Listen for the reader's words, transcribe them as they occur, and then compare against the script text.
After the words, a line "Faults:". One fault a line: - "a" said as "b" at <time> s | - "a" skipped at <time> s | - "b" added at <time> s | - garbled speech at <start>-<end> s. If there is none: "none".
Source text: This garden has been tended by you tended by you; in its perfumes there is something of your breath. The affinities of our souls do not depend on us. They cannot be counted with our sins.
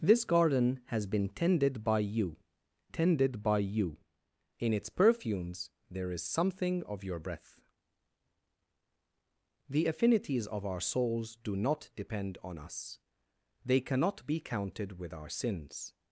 This garden has been tended by you tended by you; in its perfumes there is something of your breath. The affinities of our souls do not depend on us. They cannot be counted with our sins.
Faults:
none